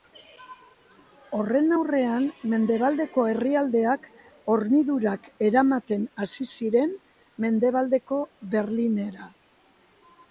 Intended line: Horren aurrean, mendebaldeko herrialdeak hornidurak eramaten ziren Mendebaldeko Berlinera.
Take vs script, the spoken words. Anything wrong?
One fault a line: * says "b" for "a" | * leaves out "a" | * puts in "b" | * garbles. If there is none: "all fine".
* puts in "hasi"